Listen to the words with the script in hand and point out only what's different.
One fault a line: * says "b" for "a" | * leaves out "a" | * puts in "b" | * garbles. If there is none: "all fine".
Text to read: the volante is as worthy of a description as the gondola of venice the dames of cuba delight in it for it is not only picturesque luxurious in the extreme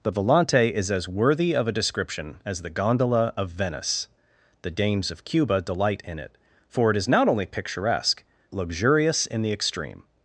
all fine